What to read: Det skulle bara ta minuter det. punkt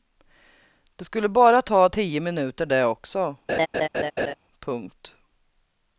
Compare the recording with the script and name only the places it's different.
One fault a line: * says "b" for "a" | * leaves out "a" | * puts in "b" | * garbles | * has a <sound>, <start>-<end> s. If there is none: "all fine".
* puts in "tio"
* puts in "också"
* has a laugh, 3.5-4.3 s